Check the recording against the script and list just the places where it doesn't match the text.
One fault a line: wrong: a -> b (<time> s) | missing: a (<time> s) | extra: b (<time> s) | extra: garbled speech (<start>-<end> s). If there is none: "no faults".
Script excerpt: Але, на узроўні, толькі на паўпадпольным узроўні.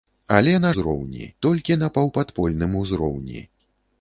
no faults